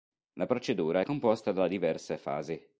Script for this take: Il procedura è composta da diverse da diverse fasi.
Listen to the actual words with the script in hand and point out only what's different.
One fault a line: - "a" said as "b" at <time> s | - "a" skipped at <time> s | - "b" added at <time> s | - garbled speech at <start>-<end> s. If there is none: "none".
- "Il" said as "La" at 0.3 s
- "da diverse" skipped at 2.2 s